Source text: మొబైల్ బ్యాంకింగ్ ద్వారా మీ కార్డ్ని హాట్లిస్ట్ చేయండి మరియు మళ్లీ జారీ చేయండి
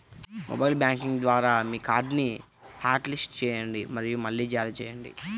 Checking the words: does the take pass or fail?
pass